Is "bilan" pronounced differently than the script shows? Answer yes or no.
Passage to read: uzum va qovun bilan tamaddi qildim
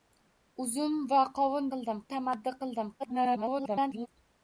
yes